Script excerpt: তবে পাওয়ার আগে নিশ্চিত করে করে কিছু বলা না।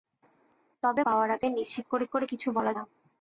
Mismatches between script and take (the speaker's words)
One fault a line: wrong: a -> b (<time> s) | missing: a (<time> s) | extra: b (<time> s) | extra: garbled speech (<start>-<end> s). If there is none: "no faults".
no faults